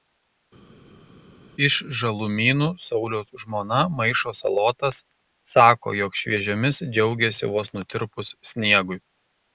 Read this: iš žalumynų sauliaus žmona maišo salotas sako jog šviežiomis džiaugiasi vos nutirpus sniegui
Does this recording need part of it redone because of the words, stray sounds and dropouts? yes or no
no